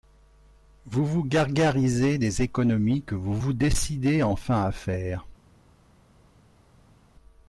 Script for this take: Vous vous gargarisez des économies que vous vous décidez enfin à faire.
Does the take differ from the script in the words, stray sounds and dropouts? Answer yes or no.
no